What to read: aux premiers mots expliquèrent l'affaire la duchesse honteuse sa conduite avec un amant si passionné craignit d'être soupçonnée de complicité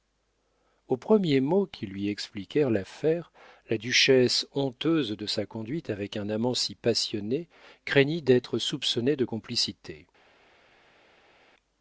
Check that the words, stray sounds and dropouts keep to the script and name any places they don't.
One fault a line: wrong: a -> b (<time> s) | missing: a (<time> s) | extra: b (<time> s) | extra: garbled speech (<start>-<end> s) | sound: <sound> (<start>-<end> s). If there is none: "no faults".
extra: qui lui (1.7 s)
extra: de (5.1 s)